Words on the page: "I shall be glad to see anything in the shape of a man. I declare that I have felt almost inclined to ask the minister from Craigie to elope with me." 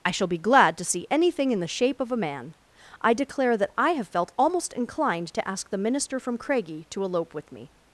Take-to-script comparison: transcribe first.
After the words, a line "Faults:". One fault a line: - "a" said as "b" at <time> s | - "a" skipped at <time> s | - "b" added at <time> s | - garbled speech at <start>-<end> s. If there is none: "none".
"I shall be glad to see anything in the shape of a man. I declare that I have felt almost inclined to ask the minister from Craigie to elope with me."
Faults:
none